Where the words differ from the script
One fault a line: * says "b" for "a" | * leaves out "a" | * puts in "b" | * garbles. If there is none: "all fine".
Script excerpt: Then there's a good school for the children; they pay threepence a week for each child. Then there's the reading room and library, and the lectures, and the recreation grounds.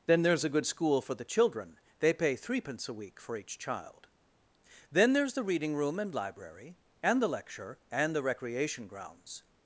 * says "lecture" for "lectures"